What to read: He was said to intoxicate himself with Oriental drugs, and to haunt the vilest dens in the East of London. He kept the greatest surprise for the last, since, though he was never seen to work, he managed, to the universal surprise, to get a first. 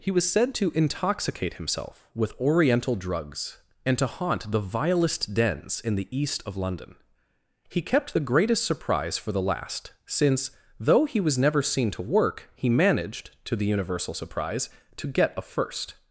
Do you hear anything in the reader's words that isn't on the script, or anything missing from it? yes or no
no